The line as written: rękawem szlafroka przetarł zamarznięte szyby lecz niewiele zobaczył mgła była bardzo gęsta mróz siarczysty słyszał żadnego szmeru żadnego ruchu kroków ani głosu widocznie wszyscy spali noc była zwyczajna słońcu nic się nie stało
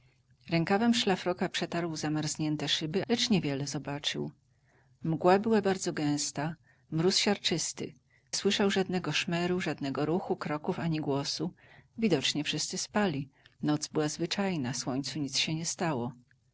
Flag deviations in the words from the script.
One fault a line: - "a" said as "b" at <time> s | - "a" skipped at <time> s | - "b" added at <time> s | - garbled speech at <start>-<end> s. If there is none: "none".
none